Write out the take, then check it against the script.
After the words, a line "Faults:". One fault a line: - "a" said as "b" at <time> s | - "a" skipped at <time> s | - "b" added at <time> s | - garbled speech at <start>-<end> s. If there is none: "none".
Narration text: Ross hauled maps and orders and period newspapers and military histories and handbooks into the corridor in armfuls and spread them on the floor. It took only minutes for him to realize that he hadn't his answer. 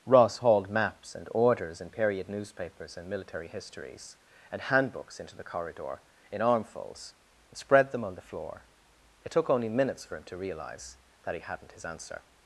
Ross hauled maps and orders and period newspapers and military histories and handbooks into the corridor in armfuls and spread them on the floor. It took only minutes for him to realize that he hadn't his answer.
Faults:
none